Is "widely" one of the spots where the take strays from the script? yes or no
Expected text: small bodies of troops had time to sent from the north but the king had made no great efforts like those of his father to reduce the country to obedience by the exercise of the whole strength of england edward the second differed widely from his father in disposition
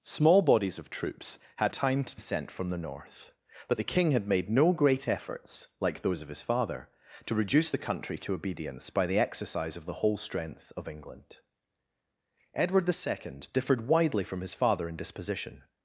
no